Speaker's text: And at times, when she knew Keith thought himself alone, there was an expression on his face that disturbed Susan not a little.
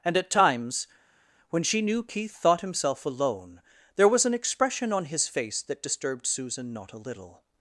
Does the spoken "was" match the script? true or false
true